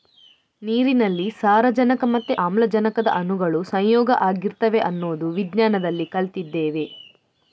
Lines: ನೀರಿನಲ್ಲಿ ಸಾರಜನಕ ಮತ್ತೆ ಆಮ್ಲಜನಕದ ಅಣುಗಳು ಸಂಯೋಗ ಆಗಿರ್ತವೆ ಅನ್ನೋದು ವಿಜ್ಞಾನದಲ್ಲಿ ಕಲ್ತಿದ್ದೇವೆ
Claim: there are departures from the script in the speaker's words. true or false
false